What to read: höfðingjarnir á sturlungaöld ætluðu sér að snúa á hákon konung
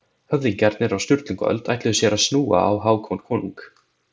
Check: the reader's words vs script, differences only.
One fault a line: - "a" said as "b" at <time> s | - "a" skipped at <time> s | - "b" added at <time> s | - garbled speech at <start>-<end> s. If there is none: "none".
none